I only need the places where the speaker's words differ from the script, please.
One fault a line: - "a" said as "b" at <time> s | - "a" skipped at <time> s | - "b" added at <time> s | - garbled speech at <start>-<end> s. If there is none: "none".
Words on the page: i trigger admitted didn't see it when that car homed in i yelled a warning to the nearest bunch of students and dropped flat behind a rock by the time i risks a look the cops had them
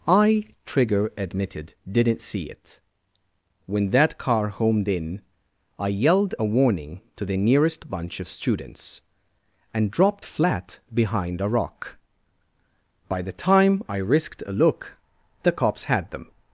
- "risks" said as "risked" at 14.0 s